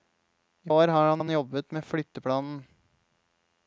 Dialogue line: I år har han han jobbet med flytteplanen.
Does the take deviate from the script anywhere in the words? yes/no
no